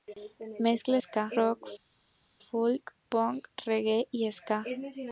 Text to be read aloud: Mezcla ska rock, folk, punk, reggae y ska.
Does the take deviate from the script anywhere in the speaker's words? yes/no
no